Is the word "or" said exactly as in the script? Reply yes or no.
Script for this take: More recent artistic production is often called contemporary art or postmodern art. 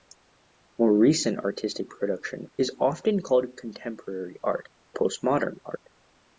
no